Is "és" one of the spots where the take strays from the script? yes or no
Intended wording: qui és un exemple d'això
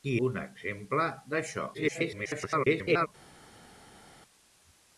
yes